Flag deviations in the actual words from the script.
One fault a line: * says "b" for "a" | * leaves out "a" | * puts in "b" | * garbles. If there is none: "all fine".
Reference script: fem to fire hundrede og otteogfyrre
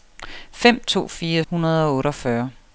all fine